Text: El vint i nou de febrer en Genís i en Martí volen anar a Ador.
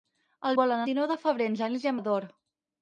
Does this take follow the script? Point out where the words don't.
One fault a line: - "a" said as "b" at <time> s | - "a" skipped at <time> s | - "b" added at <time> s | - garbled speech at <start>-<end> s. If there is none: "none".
- "vint" said as "volen" at 0.6 s
- "Martí volen anar" skipped at 2.0 s